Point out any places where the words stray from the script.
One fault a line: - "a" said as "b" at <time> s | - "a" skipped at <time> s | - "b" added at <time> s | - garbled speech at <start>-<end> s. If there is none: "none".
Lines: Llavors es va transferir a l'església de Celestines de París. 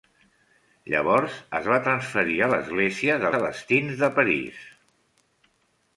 none